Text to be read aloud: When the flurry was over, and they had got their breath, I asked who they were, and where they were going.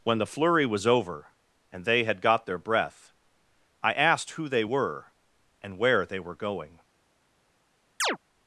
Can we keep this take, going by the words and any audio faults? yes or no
no